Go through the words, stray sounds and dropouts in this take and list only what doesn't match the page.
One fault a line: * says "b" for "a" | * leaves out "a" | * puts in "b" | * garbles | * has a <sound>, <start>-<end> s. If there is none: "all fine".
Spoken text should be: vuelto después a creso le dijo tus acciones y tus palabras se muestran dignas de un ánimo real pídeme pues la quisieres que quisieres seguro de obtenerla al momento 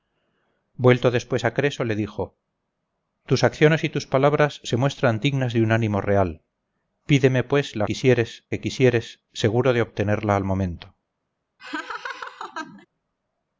* has a laugh, 11.6-12.9 s